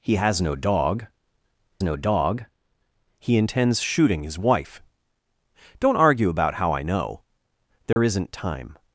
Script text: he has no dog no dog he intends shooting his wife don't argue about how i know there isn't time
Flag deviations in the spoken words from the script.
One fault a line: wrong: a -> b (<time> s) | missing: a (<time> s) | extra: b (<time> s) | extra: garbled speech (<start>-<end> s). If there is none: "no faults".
no faults